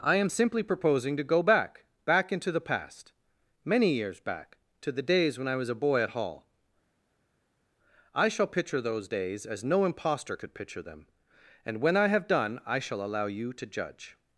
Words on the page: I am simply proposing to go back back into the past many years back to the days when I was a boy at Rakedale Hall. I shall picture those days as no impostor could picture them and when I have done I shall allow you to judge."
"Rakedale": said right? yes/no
no